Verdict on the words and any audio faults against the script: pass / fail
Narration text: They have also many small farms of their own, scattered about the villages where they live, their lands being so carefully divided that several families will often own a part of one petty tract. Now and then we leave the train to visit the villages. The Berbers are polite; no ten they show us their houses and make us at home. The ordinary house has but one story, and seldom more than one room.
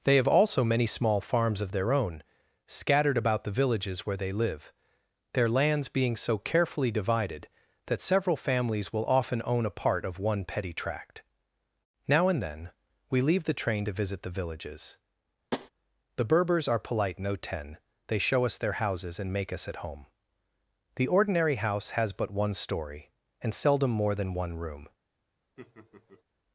fail